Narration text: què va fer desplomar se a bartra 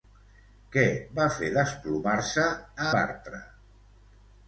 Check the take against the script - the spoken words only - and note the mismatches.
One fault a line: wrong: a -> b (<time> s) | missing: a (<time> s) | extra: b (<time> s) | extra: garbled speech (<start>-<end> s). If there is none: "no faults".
no faults